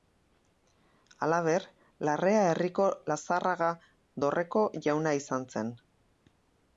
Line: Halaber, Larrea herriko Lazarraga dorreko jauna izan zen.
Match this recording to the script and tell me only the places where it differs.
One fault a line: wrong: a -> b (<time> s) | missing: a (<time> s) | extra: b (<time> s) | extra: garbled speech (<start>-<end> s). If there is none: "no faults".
no faults